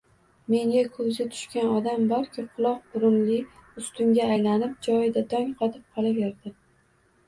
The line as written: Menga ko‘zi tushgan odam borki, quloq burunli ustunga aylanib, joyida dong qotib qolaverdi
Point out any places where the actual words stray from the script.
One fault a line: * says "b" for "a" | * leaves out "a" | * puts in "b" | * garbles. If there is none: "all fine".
all fine